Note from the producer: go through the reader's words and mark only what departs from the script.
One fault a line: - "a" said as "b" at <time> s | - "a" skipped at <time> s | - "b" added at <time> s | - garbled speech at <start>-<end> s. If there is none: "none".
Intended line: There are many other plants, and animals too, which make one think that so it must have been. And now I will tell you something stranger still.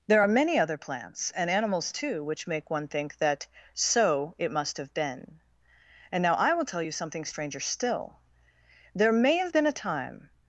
- "There may have been a time" added at 8.9 s